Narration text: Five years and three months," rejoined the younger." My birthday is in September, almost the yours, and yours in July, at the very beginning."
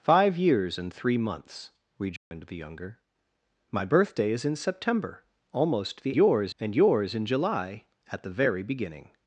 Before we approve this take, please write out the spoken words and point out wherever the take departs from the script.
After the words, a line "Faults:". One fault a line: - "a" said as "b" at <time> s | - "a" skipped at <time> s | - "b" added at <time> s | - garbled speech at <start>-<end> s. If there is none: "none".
Five years and three months," rejoined the younger." My birthday is in September, almost the yours, and yours in July, at the very beginning."
Faults:
none